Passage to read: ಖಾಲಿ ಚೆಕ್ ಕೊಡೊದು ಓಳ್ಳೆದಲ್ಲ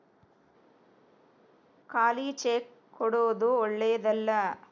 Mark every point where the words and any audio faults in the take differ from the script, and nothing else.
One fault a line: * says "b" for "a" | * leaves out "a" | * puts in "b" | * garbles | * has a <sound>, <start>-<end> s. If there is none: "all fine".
all fine